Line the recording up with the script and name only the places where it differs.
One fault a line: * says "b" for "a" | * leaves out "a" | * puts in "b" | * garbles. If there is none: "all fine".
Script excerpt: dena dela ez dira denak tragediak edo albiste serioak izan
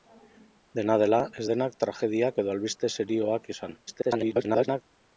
* leaves out "dira"
* garbles